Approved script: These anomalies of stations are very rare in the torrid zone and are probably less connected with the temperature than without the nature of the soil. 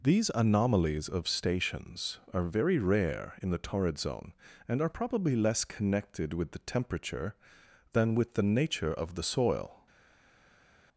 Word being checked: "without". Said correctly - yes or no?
no